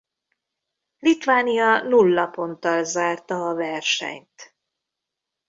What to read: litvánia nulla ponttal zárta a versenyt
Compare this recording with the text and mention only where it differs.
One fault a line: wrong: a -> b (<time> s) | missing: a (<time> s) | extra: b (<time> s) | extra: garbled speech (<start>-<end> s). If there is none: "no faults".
no faults